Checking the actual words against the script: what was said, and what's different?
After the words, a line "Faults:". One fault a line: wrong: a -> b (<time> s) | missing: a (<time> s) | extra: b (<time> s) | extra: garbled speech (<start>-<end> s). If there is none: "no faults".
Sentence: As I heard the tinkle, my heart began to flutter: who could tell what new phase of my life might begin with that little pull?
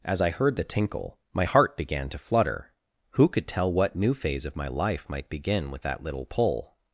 As I heard the tinkle, my heart began to flutter: who could tell what new phase of my life might begin with that little pull?
Faults:
no faults